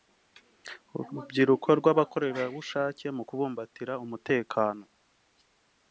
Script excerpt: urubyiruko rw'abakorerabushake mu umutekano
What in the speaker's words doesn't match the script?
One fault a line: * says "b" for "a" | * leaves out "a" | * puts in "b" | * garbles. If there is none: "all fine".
* puts in "kubumbatira"